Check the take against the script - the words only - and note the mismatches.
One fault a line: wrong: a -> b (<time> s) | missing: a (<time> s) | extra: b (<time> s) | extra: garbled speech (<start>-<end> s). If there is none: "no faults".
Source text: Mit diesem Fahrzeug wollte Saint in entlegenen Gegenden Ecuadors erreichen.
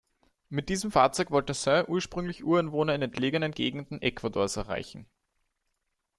extra: ursprünglich Ureinwohner (1.9 s)